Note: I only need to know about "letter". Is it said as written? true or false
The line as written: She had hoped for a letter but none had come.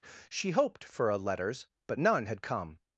false